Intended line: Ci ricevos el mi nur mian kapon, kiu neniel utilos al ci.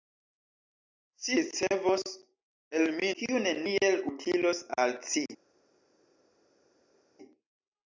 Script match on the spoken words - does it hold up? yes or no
no